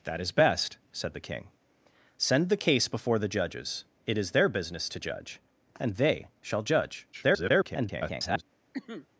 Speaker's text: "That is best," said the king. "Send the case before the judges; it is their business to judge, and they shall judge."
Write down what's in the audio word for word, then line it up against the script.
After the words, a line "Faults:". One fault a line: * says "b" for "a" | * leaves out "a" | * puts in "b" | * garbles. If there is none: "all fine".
"That is best," said the king. "Send the case before the judges; it is their business to judge, and they shall judge." [garbled]
Faults:
* garbles